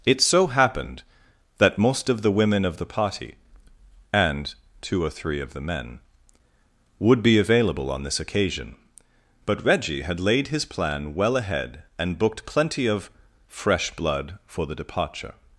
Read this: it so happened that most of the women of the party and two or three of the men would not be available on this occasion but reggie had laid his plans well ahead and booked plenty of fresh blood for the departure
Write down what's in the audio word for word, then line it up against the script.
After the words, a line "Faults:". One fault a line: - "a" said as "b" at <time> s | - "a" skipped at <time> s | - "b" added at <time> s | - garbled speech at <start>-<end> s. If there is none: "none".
it so happened that most of the women of the party and two or three of the men would be available on this occasion but reggie had laid his plan well ahead and booked plenty of fresh blood for the departure
Faults:
- "not" skipped at 7.2 s
- "plans" said as "plan" at 10.7 s